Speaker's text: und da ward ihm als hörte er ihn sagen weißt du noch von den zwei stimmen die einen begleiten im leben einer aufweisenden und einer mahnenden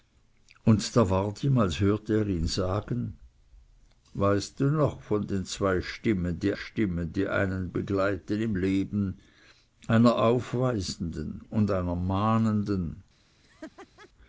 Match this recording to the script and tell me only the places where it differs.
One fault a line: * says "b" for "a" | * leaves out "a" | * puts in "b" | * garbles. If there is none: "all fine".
* puts in "stimmen die"